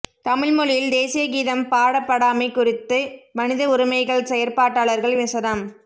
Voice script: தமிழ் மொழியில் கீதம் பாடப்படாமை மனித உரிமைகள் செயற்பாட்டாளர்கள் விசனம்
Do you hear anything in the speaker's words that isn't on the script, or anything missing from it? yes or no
yes